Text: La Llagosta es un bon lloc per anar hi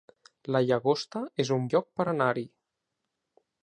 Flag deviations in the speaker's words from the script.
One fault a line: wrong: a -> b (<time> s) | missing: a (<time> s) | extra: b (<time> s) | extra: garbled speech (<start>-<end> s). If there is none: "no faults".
missing: bon (1.7 s)